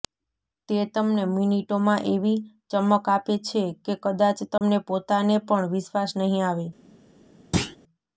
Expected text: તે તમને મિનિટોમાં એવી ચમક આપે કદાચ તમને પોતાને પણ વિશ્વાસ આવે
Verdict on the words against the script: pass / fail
fail